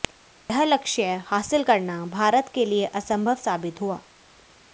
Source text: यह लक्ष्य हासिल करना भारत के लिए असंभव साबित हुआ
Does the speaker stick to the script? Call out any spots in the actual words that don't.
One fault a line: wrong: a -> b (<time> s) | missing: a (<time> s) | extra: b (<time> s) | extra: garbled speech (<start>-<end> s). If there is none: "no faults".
no faults